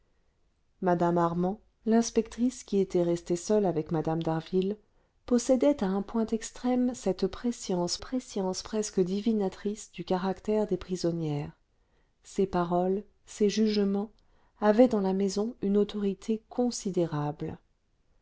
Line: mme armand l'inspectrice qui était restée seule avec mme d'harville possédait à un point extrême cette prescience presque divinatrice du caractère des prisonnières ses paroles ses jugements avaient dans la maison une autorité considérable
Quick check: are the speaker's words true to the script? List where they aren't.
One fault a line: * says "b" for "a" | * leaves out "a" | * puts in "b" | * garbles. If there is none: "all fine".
* puts in "prescience"